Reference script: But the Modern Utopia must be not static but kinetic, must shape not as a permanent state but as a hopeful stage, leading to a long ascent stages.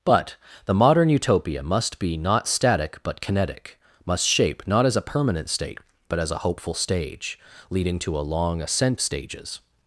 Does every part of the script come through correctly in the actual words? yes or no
yes